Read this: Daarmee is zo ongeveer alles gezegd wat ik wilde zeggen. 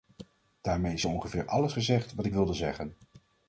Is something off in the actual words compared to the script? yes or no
no